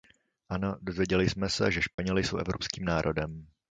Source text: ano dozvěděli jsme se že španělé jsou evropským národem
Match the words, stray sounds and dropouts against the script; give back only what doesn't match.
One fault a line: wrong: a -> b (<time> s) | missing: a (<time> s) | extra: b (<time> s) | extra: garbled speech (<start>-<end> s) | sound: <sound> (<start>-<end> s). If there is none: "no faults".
sound: dropout (1.9-2.0 s)